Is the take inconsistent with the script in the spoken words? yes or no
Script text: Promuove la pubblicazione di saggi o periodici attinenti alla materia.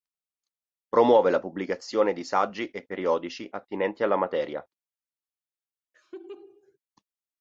yes